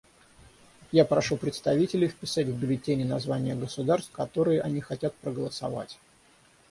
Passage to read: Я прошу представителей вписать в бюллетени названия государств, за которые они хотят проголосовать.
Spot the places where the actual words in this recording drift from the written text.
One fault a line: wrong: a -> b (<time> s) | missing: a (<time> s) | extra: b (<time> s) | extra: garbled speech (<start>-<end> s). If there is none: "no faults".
missing: за (4.1 s)